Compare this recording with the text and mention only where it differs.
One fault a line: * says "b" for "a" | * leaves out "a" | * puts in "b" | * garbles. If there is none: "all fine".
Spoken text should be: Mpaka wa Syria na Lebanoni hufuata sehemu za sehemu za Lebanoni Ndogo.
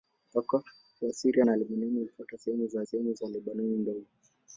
all fine